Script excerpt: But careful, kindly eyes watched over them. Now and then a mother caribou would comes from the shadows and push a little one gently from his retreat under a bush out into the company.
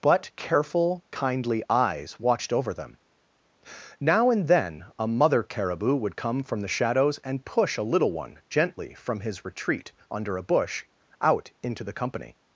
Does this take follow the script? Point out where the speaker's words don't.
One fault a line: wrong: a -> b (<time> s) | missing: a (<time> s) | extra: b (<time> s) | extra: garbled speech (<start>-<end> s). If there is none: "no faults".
wrong: comes -> come (6.2 s)